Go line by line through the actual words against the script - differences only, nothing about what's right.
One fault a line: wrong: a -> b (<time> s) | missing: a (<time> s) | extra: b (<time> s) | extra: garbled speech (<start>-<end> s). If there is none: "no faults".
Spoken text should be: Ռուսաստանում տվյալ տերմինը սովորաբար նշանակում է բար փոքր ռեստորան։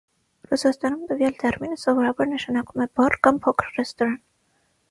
extra: կամ (3.3 s)